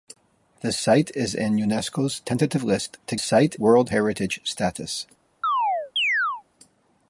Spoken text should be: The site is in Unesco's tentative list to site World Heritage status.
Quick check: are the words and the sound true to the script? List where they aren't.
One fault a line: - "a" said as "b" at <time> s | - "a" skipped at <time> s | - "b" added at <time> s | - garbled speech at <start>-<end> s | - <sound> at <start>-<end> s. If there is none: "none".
- chirp at 5.4-6.4 s